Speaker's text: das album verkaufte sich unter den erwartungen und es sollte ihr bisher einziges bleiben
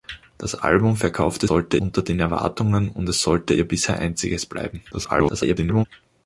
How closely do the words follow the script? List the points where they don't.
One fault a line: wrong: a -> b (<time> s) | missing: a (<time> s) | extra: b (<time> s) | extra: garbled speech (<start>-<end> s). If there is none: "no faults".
wrong: sich -> sollte (1.4 s)
extra: garbled speech (4.9-5.9 s)